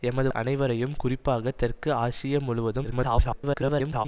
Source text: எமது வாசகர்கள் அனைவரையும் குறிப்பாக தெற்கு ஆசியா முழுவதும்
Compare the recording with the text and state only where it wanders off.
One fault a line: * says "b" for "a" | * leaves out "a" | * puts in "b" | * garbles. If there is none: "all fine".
* leaves out "வாசகர்கள்"
* garbles